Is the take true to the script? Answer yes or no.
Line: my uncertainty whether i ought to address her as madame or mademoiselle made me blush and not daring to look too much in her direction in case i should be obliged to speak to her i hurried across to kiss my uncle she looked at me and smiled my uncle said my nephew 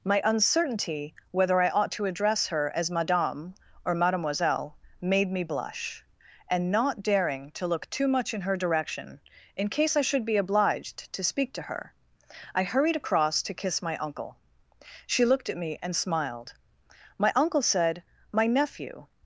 yes